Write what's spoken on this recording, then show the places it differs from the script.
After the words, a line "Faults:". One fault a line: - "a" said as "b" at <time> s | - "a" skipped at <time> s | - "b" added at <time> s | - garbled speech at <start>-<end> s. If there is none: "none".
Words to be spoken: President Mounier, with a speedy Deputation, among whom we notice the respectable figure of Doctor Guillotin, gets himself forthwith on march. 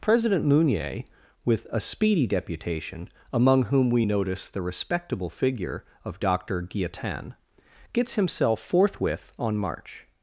President Mounier, with a speedy Deputation, among whom we notice the respectable figure of Doctor Guillotin, gets himself forthwith on march.
Faults:
none